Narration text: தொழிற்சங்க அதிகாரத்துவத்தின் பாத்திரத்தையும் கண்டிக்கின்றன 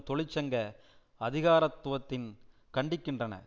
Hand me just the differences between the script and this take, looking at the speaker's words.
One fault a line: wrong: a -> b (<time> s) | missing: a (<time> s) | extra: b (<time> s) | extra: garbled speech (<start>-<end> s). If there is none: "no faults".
missing: பாத்திரத்தையும் (2.3 s)